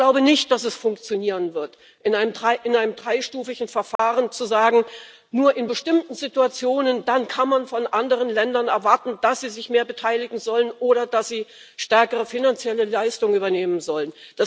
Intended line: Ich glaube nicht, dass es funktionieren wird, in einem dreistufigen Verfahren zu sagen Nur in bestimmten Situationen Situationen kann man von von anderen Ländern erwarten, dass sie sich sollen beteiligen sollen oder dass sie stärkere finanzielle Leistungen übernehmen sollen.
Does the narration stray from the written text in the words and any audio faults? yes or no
yes